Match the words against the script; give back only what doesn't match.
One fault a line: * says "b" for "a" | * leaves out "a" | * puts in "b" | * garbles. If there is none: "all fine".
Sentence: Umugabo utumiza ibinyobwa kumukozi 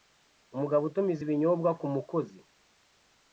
all fine